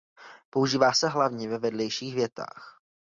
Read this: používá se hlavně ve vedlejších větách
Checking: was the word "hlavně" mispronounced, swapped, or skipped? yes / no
no